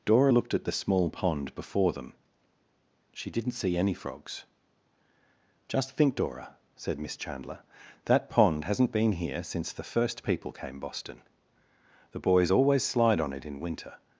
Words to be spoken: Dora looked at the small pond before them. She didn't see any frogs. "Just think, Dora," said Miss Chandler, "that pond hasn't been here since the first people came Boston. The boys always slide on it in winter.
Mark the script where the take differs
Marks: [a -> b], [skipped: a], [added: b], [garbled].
Dora looked at the small pond before them. She didn't see any frogs. "Just think, Dora," said Miss Chandler, "that pond hasn't been here since the first people came Boston. The boys always slide on it in winter.